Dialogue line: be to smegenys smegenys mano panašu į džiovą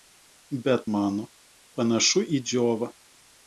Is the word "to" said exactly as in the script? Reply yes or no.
no